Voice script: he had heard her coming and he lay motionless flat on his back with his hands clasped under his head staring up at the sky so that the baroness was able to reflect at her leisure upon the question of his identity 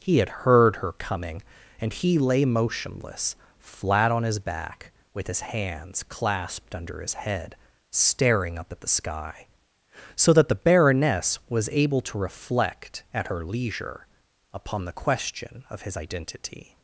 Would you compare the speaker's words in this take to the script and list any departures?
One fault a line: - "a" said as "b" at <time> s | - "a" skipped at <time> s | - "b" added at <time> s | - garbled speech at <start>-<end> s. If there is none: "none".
none